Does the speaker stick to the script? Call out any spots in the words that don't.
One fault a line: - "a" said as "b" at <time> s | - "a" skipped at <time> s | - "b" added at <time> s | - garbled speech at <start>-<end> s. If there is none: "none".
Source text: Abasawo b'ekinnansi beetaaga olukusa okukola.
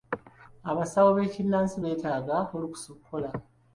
none